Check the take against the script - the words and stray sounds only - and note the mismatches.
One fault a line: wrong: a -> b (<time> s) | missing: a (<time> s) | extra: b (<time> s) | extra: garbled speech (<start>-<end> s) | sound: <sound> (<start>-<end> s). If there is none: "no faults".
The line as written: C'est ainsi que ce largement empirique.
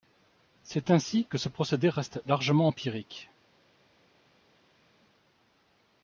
extra: procédé reste (1.5 s)